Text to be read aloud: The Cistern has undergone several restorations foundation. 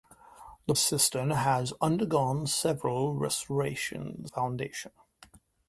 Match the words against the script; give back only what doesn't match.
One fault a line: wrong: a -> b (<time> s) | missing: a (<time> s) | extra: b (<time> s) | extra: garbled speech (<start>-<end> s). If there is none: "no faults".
no faults